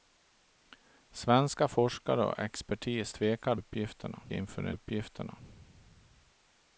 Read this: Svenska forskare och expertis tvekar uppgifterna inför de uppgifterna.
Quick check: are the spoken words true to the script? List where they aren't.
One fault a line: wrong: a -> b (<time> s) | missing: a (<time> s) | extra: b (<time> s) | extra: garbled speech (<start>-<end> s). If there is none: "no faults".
no faults